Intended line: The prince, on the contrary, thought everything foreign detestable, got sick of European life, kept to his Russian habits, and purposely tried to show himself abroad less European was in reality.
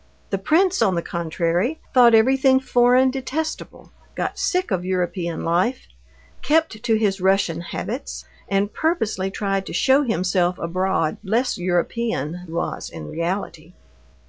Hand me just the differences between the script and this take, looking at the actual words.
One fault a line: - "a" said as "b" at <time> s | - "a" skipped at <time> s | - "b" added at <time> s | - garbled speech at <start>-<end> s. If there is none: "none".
none